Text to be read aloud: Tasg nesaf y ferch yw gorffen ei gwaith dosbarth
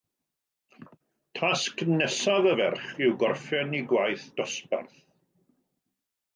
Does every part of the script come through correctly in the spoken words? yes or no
yes